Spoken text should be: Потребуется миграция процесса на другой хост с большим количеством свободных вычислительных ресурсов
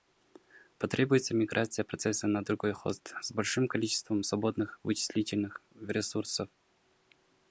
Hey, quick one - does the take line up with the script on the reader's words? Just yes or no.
yes